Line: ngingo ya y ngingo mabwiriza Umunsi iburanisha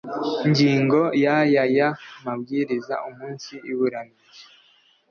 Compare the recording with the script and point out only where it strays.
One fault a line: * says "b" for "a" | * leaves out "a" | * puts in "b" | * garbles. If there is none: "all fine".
* says "aya" for "ngingo"